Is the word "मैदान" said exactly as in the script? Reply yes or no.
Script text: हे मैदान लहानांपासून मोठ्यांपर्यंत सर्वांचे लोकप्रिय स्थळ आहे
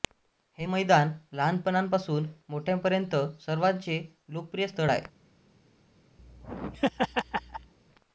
yes